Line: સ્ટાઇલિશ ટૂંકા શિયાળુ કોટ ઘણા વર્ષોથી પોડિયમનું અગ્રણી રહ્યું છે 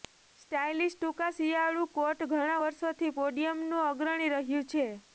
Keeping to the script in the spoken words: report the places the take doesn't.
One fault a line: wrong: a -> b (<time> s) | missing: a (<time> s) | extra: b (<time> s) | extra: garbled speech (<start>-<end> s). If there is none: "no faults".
no faults